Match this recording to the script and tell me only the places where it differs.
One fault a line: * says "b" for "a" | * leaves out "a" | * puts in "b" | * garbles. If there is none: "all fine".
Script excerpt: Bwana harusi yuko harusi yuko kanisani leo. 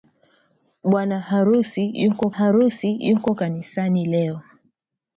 all fine